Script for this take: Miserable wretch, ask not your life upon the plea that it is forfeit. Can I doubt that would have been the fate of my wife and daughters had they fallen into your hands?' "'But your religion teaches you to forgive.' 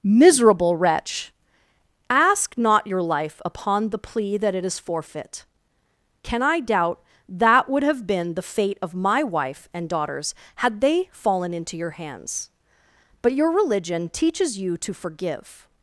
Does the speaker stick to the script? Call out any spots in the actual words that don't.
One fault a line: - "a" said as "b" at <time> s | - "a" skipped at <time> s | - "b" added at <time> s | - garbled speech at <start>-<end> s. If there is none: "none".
none